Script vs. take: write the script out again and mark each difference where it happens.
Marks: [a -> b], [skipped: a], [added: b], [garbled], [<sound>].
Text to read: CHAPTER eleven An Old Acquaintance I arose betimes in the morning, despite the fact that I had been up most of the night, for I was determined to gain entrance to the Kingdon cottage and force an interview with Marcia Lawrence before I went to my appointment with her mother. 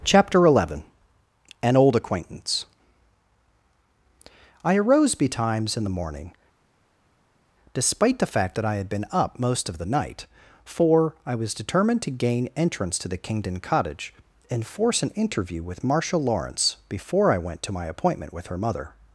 CHAPTER eleven An Old Acquaintance I arose betimes in the morning, despite the fact that I had been up most of the night, for I was determined to gain entrance to the Kingdon cottage and force an interview with Marcia Lawrence before I went to my appointment with her mother.